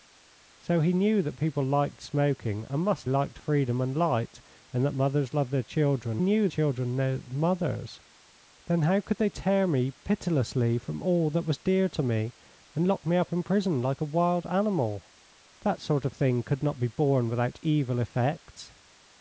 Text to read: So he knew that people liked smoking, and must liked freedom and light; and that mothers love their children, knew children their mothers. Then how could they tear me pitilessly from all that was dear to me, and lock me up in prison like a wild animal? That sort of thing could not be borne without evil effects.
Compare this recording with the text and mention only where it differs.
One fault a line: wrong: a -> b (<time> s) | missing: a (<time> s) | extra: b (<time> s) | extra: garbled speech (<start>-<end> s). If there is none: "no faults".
no faults